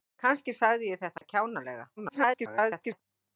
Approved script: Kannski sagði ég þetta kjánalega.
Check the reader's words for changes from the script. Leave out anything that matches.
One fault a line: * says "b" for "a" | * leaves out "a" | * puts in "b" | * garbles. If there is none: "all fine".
* garbles